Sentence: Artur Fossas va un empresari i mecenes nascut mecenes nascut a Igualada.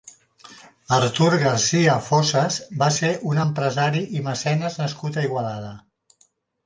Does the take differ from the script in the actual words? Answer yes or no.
yes